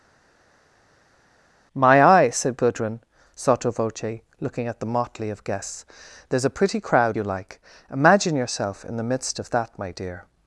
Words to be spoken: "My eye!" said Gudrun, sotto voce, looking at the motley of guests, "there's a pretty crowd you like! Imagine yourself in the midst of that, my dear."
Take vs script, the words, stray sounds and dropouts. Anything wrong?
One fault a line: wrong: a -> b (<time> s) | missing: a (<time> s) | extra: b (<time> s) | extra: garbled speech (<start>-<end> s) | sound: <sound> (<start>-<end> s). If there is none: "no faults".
no faults